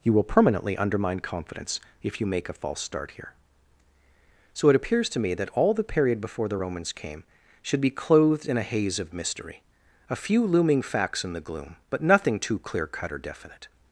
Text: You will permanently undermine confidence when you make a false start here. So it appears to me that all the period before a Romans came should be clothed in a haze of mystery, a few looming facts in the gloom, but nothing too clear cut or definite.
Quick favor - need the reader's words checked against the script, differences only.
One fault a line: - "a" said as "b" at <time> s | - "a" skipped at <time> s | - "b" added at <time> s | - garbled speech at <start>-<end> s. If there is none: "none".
- "when" said as "if" at 2.0 s
- "a" said as "the" at 6.5 s